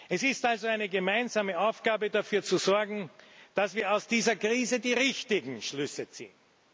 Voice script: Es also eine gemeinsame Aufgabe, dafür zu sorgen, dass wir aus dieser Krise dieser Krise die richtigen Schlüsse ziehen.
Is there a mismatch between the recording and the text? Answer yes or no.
yes